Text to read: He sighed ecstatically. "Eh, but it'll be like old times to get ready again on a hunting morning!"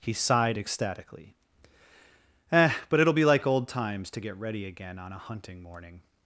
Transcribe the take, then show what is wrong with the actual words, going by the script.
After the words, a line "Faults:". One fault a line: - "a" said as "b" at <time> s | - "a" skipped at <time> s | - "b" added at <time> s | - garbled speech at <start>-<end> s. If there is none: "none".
He sighed ecstatically. "Eh, but it'll be like old times to get ready again on a hunting morning!"
Faults:
none